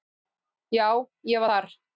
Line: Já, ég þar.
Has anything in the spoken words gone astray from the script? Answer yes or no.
no